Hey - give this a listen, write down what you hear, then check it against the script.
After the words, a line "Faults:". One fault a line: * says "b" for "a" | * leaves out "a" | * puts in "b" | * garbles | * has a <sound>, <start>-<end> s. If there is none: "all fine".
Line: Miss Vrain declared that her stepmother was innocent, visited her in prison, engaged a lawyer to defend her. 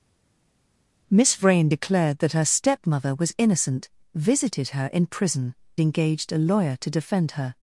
Miss Vrain declared that her stepmother was innocent, visited her in prison, engaged a lawyer to defend her.
Faults:
all fine